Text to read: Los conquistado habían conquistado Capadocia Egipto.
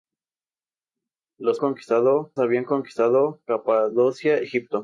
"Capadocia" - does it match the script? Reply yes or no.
yes